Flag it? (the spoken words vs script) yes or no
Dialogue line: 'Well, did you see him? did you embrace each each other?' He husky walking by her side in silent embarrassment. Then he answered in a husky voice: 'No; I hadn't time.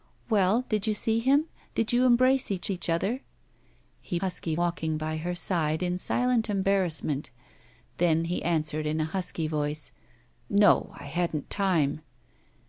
no